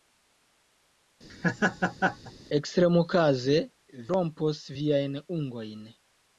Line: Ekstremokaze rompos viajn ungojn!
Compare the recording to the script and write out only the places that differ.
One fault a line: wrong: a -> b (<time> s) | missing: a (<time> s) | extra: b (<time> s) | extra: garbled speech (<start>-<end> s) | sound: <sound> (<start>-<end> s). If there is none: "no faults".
sound: laugh (1.3-2.3 s)